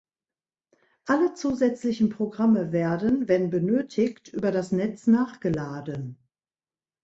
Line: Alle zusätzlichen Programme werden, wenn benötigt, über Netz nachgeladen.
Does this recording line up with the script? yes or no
no